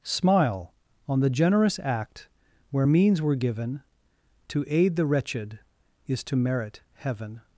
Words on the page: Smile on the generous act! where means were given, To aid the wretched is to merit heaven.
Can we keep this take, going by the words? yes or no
yes